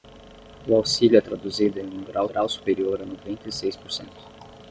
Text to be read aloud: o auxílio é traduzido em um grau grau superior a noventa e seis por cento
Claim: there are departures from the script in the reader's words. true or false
false